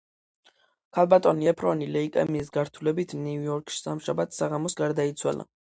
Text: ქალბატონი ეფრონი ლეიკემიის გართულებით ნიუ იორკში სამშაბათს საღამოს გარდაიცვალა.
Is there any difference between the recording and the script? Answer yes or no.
no